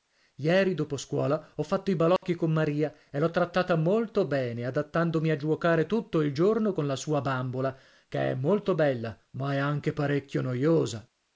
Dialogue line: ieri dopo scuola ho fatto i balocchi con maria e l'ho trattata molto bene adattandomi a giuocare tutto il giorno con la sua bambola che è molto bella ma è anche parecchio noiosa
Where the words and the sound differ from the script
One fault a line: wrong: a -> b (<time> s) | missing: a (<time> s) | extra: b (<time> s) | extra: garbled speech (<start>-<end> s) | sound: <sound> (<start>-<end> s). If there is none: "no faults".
sound: dropout (2.2-2.2 s)